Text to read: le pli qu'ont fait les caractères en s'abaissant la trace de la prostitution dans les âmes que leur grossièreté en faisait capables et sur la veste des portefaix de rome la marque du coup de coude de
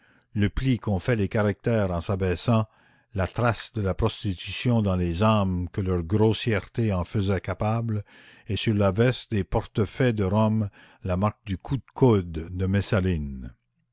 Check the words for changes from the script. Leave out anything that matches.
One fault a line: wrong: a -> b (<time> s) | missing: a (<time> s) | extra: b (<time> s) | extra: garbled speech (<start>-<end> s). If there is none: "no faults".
no faults